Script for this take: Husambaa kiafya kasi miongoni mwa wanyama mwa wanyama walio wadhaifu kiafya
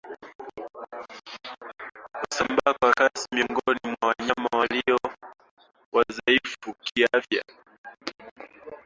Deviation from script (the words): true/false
true